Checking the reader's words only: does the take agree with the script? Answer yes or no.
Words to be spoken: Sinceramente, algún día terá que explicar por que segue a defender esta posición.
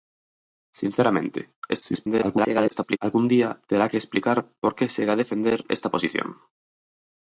no